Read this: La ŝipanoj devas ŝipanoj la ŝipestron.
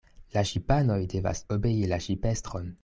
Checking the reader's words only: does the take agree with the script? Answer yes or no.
no